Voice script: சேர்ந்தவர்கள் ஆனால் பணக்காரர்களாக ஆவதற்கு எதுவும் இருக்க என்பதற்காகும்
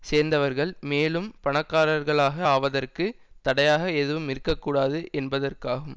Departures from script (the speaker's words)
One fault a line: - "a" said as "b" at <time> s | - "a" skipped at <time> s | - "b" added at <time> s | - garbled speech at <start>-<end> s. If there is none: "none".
- "ஆனால்" said as "மேலும்" at 0.8 s
- "தடையாக" added at 3.4 s
- "கூடாது" added at 4.6 s